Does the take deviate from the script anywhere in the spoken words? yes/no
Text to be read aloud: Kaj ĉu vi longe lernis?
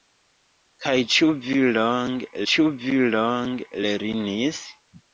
yes